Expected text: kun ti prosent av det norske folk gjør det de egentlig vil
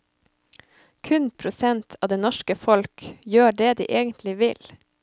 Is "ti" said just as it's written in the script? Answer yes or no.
no